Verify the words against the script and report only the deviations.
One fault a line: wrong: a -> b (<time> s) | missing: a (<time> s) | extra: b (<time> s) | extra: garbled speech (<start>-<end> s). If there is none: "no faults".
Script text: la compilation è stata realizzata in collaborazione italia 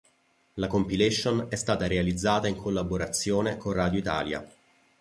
extra: con radio (3.6 s)